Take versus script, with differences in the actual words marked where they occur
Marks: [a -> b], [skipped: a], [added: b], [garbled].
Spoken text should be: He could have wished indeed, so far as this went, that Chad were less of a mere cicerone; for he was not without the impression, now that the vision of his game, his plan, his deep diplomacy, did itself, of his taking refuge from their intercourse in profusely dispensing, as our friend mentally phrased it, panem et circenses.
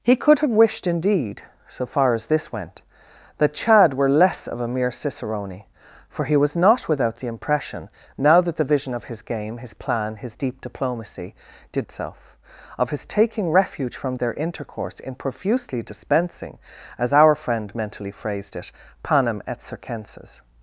He could have wished indeed, so far as this went, that Chad were less of a mere cicerone; for he was not without the impression, now that the vision of his game, his plan, his deep diplomacy, did itself, of his taking refuge from their intercourse in profusely dispensing, as our friend mentally phrased it, panem et circenses.